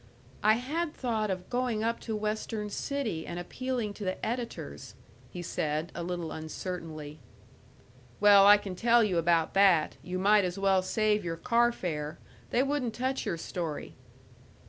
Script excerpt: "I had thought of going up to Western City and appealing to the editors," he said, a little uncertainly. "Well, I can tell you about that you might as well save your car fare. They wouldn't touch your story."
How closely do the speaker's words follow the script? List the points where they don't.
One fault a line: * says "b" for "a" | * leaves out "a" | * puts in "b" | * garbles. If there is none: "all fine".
all fine